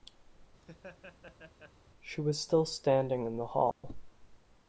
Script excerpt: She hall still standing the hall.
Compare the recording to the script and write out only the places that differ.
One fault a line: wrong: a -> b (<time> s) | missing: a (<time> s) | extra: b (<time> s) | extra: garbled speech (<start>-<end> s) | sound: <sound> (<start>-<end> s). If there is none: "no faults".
sound: laugh (0.6-1.7 s)
wrong: hall -> was (2.2 s)
extra: in (3.2 s)
sound: dropout (3.7-3.8 s)